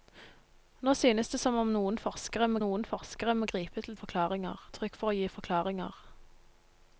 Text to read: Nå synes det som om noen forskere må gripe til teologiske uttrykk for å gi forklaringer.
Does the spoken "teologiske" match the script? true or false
false